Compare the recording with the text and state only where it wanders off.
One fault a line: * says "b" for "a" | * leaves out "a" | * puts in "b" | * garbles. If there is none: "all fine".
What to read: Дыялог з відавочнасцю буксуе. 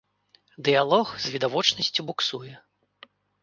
all fine